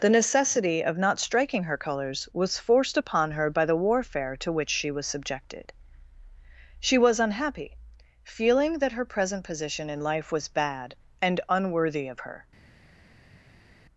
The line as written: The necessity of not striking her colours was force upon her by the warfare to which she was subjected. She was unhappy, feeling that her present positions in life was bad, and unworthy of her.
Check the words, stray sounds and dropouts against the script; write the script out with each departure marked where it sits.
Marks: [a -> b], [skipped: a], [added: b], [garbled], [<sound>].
The necessity of not striking her colours was [force -> forced] upon her by the warfare to which she was subjected. She was unhappy, feeling that her present [positions -> position] in life was bad, and unworthy of her.